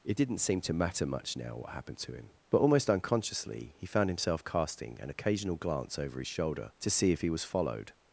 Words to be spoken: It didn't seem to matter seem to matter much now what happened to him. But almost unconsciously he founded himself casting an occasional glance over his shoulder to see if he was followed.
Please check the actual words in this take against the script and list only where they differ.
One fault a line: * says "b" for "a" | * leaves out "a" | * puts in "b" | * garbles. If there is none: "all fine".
* leaves out "seem to matter"
* says "found" for "founded"